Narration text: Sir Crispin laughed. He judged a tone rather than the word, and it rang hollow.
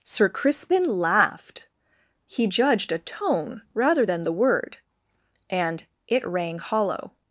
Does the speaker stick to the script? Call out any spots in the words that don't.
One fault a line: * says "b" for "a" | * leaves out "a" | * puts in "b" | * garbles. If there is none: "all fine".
all fine